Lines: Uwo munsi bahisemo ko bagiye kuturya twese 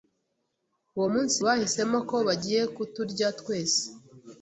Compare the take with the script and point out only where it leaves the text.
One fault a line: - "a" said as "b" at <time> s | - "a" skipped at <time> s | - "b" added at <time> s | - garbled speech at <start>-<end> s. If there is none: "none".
none